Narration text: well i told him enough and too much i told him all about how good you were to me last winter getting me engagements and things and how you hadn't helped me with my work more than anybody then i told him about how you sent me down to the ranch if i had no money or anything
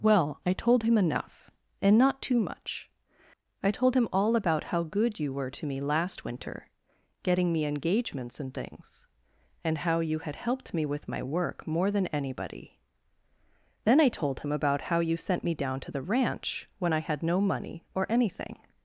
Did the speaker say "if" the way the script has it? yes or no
no